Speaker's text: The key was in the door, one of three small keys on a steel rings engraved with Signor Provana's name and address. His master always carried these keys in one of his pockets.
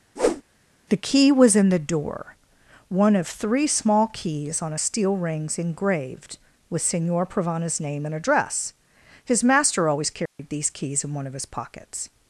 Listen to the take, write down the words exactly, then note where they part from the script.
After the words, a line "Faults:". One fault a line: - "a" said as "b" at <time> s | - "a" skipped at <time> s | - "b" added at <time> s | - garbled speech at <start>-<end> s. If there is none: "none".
The key was in the door, one of three small keys on a steel rings engraved with Signor Provana's name and address. His master always carried these keys in one of his pockets.
Faults:
none